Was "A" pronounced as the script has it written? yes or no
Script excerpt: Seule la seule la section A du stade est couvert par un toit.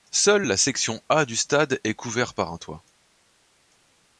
yes